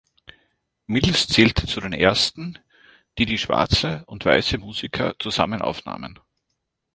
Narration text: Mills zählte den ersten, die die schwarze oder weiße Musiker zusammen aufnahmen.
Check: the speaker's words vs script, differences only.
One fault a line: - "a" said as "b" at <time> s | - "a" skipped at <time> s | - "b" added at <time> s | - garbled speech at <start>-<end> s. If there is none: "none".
- "zu" added at 1.7 s
- "oder" said as "und" at 4.1 s